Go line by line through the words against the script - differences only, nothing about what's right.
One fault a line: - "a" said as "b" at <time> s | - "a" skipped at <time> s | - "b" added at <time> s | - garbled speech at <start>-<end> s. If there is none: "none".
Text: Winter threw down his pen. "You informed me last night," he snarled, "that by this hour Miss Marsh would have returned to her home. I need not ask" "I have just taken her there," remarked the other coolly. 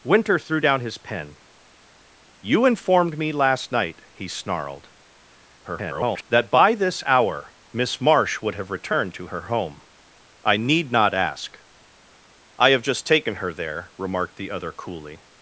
- garbled speech at 5.6-6.2 s